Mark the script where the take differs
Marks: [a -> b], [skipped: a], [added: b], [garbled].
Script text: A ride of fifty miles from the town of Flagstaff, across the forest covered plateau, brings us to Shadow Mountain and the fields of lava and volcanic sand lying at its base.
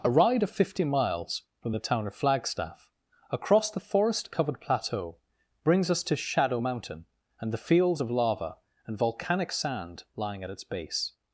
A ride of fifty miles from the town of Flagstaff, across the forest covered plateau, brings us to Shadow Mountain and the fields of lava and volcanic sand lying at its base.